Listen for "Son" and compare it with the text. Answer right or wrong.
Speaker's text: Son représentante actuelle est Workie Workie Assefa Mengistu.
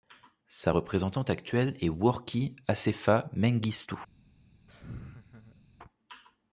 wrong